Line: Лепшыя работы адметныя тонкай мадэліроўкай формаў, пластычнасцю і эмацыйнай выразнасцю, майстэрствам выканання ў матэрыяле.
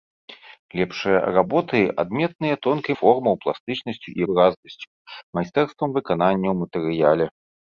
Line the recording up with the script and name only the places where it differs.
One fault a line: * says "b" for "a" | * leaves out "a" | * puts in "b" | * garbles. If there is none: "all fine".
* leaves out "мадэліроўкай"
* leaves out "эмацыйнай"